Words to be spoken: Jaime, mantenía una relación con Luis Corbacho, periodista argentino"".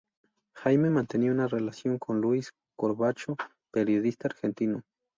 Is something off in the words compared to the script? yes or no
no